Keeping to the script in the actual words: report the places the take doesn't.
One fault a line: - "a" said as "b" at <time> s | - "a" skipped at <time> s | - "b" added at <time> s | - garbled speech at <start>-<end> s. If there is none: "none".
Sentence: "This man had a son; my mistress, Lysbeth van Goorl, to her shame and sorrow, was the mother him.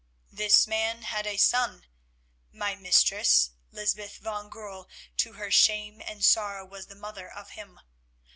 - "of" added at 7.3 s